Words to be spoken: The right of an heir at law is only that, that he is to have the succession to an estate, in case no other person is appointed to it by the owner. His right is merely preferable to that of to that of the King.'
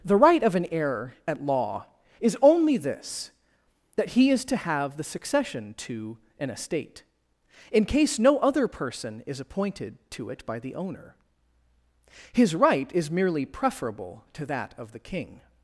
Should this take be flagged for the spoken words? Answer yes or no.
yes